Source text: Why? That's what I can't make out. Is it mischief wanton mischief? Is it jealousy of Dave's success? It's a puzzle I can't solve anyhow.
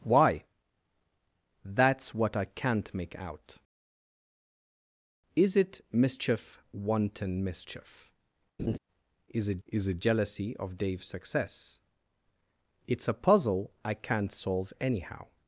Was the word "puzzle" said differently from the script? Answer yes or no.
no